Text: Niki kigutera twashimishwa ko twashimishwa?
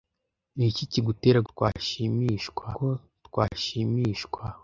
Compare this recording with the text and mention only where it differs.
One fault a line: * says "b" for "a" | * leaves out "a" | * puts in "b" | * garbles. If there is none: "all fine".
all fine